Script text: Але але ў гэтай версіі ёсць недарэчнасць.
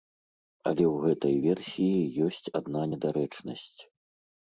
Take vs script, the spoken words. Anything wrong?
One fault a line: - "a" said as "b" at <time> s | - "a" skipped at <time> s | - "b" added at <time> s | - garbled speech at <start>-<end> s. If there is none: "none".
- "але" skipped at 0.8 s
- "адна" added at 2.6 s